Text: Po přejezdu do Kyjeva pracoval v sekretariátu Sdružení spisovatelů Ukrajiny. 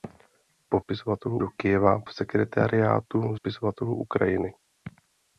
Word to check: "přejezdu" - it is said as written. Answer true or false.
false